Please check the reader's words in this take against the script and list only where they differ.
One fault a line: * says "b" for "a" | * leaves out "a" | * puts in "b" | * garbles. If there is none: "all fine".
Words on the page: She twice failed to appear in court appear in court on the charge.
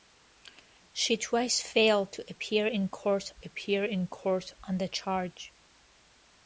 all fine